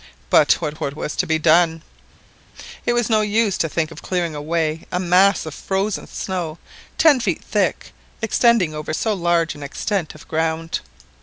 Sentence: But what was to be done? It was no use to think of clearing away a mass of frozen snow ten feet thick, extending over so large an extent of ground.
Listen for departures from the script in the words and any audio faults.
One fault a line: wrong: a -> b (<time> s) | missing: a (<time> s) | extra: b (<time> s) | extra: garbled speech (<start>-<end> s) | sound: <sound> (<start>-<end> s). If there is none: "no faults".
extra: what (0.7 s)